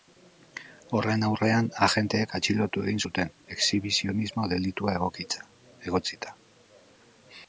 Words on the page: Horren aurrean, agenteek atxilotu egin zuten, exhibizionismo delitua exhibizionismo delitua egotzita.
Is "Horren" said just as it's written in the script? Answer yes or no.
yes